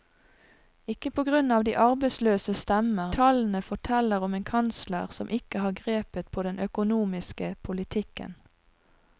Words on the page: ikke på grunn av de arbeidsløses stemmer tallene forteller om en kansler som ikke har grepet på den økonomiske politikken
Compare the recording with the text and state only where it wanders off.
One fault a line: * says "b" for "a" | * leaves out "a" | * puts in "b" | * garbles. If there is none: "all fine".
all fine